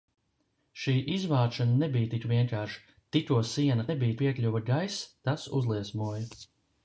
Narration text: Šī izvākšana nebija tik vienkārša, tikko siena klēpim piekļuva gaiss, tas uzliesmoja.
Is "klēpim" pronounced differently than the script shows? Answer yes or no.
yes